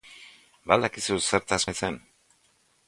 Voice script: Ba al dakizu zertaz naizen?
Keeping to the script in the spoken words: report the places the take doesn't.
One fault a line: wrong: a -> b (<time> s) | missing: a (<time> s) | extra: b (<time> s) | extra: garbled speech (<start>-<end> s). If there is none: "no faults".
no faults